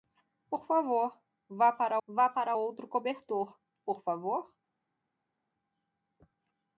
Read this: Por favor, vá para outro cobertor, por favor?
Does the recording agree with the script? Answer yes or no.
no